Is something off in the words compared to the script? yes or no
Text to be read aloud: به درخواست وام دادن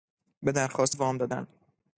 no